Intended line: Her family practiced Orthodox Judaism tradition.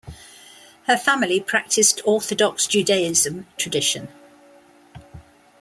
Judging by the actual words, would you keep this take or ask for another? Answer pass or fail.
pass